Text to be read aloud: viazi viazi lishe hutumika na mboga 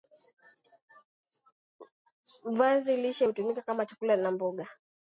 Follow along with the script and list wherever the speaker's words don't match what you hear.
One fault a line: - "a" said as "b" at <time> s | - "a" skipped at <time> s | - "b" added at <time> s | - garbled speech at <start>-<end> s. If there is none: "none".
- "viazi" skipped at 3.0 s
- "kama chakula" added at 3.6 s